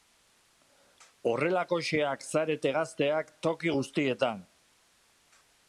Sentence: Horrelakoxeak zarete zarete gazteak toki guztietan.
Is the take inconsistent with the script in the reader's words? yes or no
yes